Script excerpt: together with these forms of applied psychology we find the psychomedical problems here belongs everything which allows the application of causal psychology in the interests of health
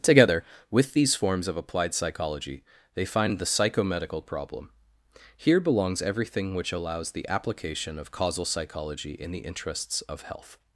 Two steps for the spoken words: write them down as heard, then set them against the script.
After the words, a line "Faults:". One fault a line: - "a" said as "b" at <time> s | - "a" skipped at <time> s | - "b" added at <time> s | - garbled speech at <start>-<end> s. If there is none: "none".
together with these forms of applied psychology they find the psychomedical problem here belongs everything which allows the application of causal psychology in the interests of health
Faults:
- "we" said as "they" at 3.0 s
- "problems" said as "problem" at 4.2 s